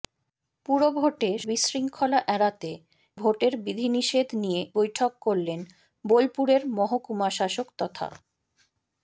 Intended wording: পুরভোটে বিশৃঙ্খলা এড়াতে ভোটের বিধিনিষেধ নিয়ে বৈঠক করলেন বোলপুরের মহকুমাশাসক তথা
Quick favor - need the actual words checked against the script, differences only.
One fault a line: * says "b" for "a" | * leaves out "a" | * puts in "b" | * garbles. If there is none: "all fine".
all fine